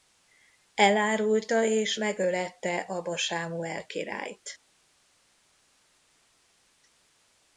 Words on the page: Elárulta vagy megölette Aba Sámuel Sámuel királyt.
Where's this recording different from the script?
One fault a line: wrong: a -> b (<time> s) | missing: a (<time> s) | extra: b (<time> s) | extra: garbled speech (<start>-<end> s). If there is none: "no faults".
wrong: vagy -> és (1.6 s)
missing: Sámuel (3.8 s)